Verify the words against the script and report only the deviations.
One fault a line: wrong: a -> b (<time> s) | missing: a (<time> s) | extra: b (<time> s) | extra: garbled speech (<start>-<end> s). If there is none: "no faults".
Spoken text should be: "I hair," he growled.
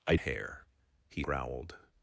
no faults